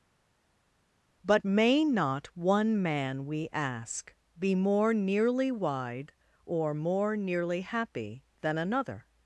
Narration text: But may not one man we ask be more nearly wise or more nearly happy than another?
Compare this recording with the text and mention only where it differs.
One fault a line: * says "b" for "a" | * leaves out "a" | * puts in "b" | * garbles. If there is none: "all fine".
* says "wide" for "wise"